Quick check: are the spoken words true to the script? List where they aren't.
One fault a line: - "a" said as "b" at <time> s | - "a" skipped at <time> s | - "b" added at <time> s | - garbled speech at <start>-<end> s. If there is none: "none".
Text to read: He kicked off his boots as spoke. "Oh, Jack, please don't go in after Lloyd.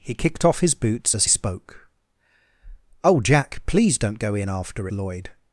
none